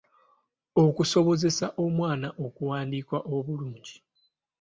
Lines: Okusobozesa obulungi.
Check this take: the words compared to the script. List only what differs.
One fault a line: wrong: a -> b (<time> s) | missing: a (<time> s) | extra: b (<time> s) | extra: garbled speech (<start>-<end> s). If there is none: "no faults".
extra: omwana okuwandiika (1.8 s)